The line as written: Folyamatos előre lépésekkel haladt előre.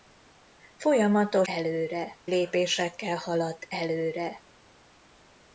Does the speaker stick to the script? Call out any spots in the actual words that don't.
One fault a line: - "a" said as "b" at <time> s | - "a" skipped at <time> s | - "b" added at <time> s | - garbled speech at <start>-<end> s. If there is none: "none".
none